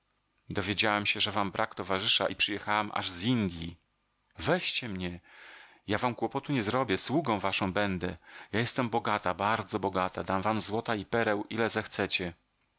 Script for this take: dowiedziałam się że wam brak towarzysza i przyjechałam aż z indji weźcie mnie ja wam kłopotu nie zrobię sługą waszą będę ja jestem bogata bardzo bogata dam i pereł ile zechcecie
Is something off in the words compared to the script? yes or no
yes